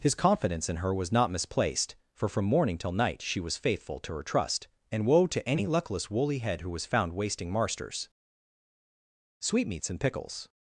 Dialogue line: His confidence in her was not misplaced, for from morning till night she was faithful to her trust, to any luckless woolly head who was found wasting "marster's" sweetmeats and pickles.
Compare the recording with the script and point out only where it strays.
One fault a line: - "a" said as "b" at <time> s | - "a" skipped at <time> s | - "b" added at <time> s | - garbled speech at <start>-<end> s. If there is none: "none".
- "and woe" added at 4.9 s